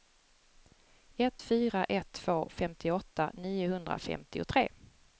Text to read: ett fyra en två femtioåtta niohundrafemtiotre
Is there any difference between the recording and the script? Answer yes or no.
yes